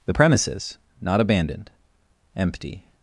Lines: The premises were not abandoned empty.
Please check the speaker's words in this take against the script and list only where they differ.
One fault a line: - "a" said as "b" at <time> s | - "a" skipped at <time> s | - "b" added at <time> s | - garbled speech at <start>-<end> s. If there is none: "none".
- "were" skipped at 0.8 s